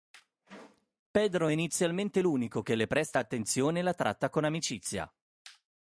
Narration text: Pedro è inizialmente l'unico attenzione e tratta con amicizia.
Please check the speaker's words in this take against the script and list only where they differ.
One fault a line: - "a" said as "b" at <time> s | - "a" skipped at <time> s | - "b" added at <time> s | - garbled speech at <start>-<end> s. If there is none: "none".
- "che le presta" added at 2.6 s
- "la" added at 3.8 s